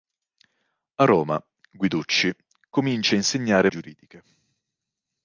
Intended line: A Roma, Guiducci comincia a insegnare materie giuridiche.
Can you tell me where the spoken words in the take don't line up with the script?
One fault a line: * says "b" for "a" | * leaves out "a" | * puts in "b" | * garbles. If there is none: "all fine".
* leaves out "materie"